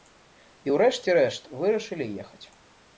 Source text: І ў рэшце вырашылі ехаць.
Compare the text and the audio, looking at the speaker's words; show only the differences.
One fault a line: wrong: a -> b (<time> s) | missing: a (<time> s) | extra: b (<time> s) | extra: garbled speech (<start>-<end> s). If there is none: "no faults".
extra: рэшт (1.2 s)